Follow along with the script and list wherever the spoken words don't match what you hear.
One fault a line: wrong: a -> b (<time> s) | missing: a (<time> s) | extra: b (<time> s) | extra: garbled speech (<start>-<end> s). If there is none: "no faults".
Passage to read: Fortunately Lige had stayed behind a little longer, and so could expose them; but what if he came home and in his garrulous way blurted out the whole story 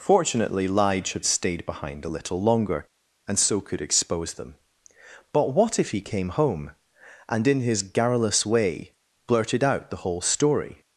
no faults